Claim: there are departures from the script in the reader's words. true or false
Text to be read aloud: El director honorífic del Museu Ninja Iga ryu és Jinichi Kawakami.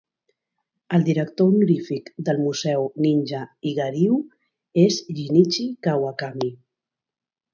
false